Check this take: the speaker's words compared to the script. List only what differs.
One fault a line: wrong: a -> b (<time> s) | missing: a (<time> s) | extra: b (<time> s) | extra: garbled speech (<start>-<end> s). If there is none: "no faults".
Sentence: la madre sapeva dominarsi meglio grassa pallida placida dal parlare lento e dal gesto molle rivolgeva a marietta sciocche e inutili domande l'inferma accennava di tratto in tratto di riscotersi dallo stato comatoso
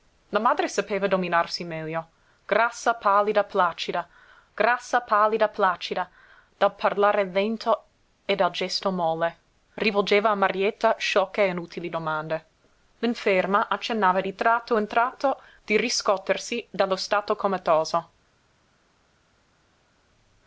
extra: grassa pallida placida (4.6 s)